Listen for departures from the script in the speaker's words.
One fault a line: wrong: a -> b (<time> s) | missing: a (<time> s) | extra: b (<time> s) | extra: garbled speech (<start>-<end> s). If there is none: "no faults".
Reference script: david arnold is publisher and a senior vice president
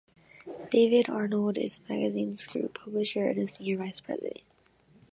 extra: the magazine's group (1.8 s)